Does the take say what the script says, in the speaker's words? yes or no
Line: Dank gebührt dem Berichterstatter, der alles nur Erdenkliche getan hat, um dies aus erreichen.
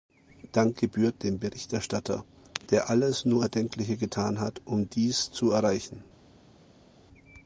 no